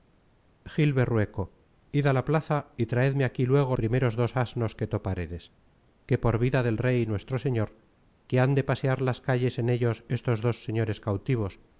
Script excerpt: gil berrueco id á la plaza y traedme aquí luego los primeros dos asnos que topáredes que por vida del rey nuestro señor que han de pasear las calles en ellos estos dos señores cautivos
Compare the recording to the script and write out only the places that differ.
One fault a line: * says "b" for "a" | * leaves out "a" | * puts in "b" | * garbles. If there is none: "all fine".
* leaves out "los"